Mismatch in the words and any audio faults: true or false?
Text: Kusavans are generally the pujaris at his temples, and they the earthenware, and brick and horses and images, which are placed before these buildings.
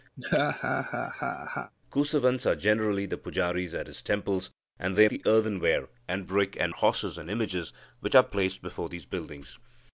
true